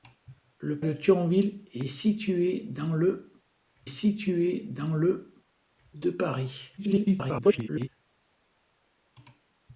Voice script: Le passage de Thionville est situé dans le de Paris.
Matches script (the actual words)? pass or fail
fail